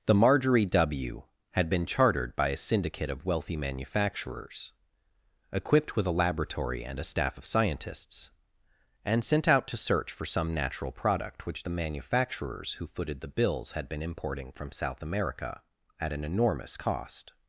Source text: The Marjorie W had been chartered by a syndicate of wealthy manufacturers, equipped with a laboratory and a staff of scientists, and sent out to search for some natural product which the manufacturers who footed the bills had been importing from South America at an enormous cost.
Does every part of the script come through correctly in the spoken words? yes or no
yes